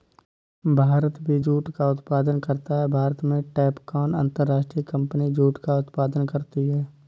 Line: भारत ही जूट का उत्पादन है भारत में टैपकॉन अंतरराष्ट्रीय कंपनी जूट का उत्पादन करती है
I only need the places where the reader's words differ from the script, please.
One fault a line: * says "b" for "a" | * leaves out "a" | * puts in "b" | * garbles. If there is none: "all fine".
* says "भी" for "ही"
* puts in "करता"